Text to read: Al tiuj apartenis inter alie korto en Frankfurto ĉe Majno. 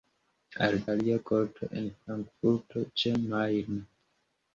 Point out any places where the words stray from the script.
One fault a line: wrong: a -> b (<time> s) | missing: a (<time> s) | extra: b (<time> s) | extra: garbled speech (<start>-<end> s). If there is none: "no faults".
missing: tiuj apartenis inter (0.8 s)